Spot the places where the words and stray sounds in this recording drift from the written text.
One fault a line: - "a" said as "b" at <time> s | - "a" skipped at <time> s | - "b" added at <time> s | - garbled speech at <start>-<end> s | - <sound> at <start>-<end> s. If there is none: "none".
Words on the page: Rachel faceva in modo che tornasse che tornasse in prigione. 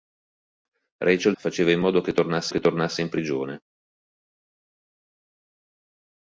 none